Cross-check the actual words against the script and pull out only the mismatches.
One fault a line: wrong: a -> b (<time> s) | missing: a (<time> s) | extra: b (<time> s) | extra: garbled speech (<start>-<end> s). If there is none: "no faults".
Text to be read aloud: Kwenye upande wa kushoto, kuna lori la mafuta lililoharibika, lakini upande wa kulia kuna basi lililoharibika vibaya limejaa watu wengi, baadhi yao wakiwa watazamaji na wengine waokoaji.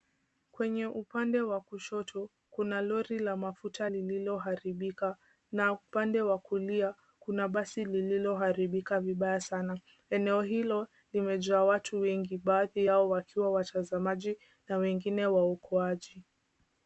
wrong: lakini -> na (5.5 s)
extra: sana Eneo hilo (9.4 s)